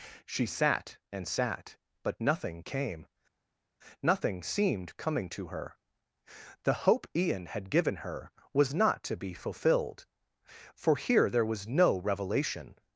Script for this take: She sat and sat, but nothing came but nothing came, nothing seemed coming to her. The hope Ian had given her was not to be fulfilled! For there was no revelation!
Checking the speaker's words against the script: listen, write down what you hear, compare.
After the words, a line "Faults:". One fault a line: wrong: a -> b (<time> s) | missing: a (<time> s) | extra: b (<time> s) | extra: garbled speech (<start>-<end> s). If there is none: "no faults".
She sat and sat, but nothing came, nothing seemed coming to her. The hope Ian had given her was not to be fulfilled! For here there was no revelation!
Faults:
missing: but (3.0 s)
missing: came nothing (4.4 s)
extra: here (11.0 s)